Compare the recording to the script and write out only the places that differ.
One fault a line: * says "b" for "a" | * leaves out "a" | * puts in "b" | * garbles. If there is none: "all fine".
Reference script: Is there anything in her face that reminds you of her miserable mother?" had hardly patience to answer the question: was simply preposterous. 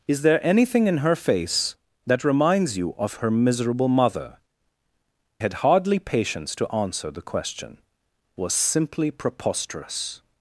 all fine